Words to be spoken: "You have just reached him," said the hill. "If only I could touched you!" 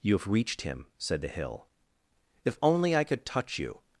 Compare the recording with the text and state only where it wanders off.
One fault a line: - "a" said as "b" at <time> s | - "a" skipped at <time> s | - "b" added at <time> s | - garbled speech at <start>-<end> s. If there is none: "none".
- "just" skipped at 0.3 s
- "touched" said as "touch" at 3.2 s